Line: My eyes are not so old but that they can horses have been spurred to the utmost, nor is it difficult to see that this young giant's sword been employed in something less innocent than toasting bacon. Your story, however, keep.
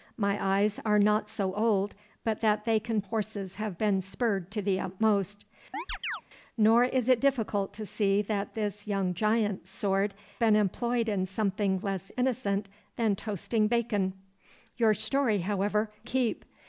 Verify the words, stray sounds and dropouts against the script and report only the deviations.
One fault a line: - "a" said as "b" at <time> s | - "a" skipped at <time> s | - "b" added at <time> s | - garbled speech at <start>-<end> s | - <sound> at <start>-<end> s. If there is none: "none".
- chirp at 5.7-6.2 s